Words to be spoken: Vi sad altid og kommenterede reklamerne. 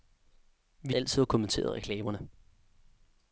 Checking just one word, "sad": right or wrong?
wrong